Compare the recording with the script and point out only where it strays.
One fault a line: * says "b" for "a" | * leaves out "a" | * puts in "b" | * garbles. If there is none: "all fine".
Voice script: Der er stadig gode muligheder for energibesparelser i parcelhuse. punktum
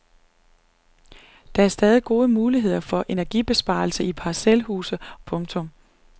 all fine